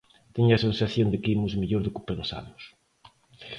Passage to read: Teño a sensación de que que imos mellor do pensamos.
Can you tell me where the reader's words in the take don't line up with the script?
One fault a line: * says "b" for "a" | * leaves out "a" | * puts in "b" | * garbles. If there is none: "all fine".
* leaves out "que"
* puts in "que"